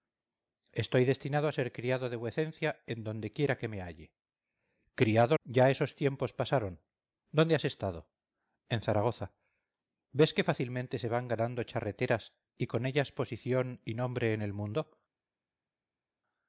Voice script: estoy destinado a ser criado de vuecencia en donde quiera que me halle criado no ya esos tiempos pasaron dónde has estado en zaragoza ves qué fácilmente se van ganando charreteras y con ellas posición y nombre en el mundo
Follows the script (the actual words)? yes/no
no